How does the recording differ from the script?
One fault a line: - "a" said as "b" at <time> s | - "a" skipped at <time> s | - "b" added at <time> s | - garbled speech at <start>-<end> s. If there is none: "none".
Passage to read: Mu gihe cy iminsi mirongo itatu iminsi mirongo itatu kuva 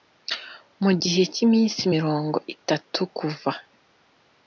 - "iminsi mirongo itatu" skipped at 3.0 s